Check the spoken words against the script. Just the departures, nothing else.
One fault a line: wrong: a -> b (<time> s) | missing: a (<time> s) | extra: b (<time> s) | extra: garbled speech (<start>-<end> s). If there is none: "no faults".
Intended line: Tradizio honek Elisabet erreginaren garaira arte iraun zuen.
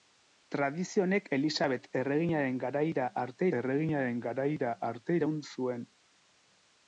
extra: erreginaren garaira arte (3.6 s)